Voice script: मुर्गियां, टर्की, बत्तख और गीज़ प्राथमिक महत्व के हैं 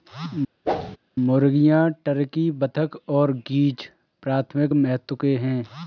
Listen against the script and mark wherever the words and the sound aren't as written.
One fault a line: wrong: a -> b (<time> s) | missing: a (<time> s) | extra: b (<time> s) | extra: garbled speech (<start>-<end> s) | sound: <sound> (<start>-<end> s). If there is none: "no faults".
sound: whoosh (0.6-1.0 s)